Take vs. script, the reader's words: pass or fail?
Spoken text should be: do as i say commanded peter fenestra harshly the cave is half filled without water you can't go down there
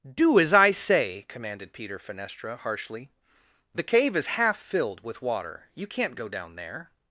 fail